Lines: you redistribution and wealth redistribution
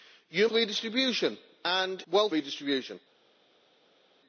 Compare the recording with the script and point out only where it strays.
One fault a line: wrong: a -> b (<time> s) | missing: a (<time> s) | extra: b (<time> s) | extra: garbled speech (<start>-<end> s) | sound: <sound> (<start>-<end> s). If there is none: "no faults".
no faults